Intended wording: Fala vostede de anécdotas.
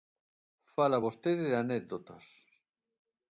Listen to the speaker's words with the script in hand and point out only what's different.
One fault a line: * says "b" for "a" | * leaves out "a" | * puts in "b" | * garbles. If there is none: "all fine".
all fine